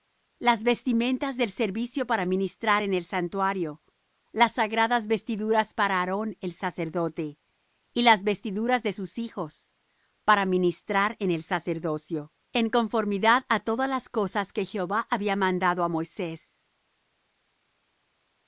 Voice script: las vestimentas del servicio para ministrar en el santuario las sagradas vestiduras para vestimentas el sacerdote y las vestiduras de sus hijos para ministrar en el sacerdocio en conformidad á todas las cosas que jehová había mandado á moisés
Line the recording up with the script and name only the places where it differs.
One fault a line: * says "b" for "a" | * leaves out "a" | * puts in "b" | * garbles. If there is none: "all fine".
* says "aarón" for "vestimentas"